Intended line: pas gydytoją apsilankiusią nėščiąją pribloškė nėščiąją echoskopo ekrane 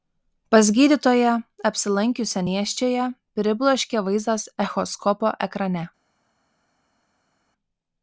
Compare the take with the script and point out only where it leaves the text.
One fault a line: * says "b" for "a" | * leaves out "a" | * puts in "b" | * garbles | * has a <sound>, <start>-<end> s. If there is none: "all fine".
* says "vaizdas" for "nėščiąją"